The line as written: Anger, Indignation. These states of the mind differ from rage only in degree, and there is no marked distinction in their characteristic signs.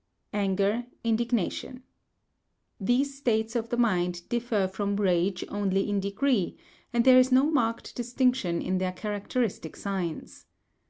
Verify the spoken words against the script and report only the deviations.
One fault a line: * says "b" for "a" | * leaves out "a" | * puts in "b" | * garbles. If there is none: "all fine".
all fine